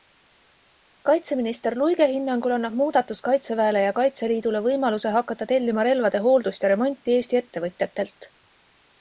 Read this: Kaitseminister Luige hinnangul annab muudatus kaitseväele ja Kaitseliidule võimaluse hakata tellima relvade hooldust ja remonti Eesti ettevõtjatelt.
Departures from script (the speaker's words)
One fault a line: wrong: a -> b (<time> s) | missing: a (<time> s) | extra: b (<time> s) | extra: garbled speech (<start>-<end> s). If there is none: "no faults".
no faults